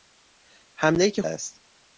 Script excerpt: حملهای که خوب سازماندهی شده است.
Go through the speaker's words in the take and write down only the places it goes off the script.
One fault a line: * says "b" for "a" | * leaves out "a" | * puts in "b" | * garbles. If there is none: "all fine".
* leaves out "خوب سازماندهی شده"